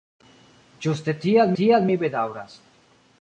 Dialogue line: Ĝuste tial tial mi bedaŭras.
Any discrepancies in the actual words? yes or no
no